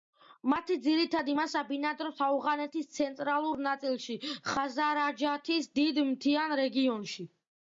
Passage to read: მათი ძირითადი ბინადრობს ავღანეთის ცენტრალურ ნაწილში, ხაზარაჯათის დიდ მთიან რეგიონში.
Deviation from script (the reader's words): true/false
true